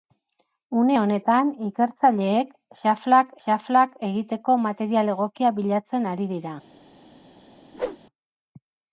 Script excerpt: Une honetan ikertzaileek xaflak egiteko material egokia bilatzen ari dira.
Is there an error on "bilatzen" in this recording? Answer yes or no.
no